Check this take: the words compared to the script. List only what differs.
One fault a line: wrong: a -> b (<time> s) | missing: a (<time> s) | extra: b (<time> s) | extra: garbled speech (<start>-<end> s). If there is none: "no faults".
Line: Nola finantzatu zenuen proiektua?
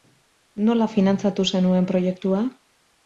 no faults